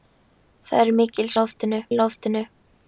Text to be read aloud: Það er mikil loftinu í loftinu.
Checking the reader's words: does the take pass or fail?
pass